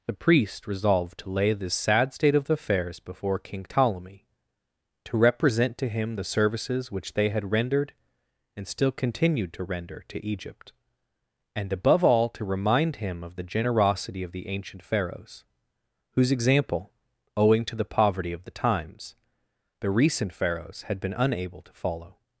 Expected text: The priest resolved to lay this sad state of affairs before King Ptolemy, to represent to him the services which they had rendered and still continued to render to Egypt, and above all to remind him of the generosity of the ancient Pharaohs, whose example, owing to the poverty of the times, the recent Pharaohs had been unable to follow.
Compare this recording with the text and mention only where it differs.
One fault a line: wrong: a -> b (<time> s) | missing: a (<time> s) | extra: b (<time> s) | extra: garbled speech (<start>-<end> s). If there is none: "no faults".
no faults